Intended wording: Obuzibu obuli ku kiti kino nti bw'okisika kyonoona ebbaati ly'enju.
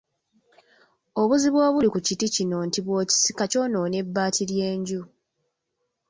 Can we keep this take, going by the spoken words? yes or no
yes